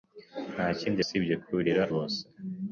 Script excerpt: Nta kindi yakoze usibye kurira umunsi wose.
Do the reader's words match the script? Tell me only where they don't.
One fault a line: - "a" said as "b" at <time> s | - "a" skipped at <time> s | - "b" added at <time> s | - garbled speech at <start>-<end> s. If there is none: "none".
- "yakoze" skipped at 1.0 s
- "umunsi" skipped at 1.8 s